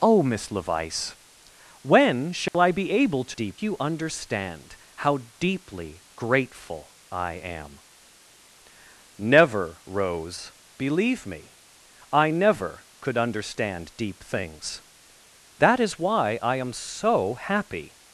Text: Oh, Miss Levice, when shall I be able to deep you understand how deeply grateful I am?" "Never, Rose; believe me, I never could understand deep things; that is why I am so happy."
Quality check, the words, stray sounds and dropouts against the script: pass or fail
fail